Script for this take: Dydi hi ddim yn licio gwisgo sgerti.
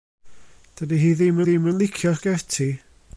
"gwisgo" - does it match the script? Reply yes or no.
no